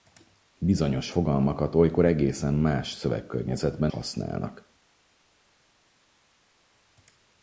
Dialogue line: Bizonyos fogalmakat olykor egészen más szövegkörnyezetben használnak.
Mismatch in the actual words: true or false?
false